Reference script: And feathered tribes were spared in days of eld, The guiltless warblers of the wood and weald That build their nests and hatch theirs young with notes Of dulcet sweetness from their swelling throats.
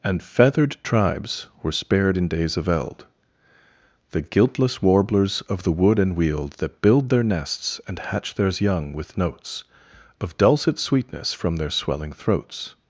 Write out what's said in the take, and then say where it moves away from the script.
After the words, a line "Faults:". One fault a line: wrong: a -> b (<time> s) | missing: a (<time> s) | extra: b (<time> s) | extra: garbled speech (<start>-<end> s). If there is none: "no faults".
And feathered tribes were spared in days of eld, The guiltless warblers of the wood and weald That build their nests and hatch theirs young with notes Of dulcet sweetness from their swelling throats.
Faults:
no faults